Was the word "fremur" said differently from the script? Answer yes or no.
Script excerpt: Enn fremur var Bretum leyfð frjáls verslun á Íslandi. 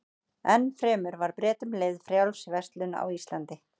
no